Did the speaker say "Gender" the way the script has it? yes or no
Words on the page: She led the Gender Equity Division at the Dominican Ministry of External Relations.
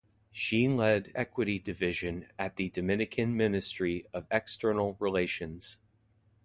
no